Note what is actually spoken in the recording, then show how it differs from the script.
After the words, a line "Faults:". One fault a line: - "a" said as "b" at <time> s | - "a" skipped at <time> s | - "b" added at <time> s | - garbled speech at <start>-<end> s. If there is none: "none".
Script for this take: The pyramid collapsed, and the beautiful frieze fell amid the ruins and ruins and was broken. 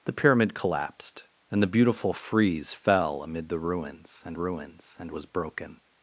The pyramid collapsed, and the beautiful frieze fell amid the ruins and ruins and was broken.
Faults:
none